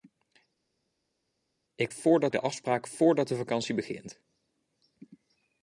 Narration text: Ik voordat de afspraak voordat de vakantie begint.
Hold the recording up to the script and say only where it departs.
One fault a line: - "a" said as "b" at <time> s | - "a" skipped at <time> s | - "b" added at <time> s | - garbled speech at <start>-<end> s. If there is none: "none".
none